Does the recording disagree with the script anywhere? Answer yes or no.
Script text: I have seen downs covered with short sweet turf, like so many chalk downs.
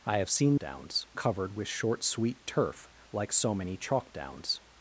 no